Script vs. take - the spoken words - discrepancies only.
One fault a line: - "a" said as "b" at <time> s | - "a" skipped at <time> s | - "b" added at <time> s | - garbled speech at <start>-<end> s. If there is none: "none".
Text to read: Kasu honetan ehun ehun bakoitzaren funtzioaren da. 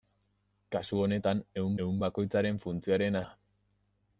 none